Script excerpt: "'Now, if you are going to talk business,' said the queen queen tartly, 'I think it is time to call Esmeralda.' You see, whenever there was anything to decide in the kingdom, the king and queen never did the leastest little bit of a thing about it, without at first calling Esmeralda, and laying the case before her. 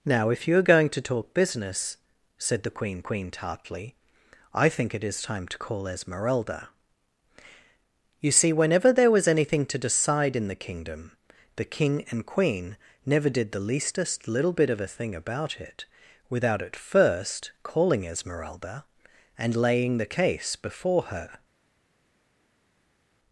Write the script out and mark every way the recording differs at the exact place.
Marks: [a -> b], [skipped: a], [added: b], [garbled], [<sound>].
"'Now, if you are going to talk business,' said the queen queen tartly, 'I think it is time to call Esmeralda.' You see, whenever there was anything to decide in the kingdom, the king and queen never did the leastest little bit of a thing about it, without at first calling Esmeralda, and laying the case before her.